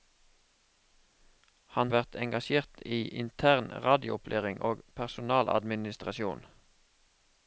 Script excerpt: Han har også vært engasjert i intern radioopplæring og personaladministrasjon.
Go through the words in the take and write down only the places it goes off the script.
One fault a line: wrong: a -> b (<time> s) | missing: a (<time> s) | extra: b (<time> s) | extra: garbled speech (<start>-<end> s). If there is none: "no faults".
missing: har også (1.9 s)